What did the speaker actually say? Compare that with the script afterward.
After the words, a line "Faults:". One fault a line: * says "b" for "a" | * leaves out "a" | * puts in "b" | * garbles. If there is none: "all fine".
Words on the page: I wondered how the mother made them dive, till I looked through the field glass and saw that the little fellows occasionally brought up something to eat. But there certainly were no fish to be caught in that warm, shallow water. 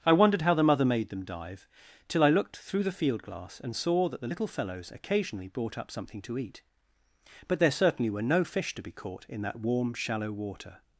I wondered how the mother made them dive, till I looked through the field glass and saw that the little fellows occasionally brought up something to eat. But there certainly were no fish to be caught in that warm, shallow water.
Faults:
all fine